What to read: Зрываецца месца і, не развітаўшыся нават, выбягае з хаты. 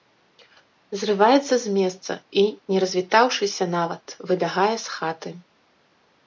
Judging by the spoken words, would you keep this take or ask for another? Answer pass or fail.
fail